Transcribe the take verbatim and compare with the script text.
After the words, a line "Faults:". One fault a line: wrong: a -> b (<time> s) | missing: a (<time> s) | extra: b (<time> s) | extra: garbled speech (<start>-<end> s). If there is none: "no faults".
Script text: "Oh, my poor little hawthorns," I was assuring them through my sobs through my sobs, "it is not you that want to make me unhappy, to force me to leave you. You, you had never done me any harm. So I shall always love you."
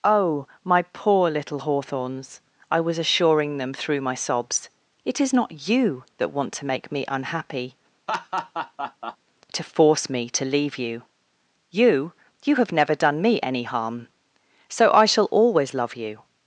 "Oh, my poor little hawthorns," I was assuring them through my sobs, "it is not you that want to make me unhappy, to force me to leave you. You, you have never done me any harm. So I shall always love you."
Faults:
missing: through my sobs (4.7 s)
wrong: had -> have (12.6 s)